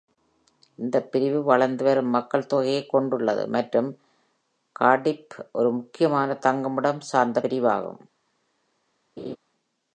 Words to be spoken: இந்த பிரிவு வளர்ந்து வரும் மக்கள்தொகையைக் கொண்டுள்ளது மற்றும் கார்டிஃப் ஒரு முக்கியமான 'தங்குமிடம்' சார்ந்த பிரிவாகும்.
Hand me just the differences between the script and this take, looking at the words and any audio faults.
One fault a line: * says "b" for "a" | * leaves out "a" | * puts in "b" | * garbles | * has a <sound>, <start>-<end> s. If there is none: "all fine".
* has a laugh, 9.2-9.4 s